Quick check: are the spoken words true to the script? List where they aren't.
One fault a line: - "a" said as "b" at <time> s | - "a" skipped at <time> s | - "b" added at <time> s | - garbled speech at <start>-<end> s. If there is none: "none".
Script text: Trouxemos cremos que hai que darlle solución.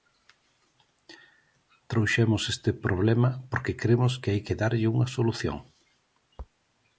- "este problema porque" added at 2.5 s
- "unha" added at 4.9 s